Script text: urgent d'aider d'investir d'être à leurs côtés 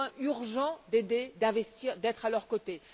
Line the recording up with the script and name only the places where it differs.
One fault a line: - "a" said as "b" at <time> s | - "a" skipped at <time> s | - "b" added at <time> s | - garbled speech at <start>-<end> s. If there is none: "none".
none